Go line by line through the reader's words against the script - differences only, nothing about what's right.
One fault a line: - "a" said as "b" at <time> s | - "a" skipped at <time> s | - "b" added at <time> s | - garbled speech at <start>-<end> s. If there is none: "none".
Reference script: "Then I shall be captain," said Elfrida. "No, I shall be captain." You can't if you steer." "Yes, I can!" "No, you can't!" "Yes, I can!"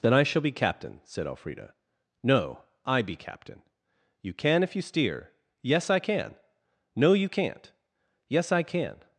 - "shall" skipped at 3.0 s
- "can't" said as "can" at 4.3 s